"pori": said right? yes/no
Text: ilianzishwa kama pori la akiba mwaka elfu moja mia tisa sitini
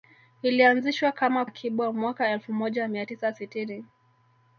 no